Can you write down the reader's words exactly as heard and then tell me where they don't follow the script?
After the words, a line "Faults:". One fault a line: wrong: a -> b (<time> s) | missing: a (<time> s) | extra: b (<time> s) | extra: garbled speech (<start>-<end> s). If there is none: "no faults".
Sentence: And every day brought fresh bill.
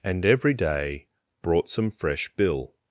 And every day brought some fresh bill.
Faults:
extra: some (1.7 s)